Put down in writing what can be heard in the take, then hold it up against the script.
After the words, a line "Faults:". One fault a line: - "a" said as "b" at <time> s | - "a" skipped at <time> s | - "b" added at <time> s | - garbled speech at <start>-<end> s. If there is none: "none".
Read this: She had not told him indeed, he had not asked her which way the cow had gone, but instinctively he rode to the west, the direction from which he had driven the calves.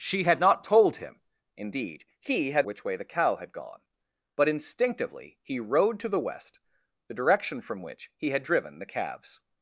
She had not told him indeed, he had which way the cow had gone, but instinctively he rode to the west, the direction from which he had driven the calves.
Faults:
- "not asked her" skipped at 2.6 s